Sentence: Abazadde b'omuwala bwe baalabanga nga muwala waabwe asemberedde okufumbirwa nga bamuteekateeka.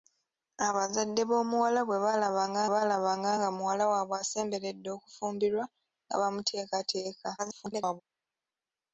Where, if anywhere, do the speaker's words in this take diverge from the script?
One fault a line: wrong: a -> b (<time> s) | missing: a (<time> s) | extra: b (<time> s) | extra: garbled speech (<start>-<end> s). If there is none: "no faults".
extra: baalabanga (2.7 s)
extra: garbled speech (7.4-8.0 s)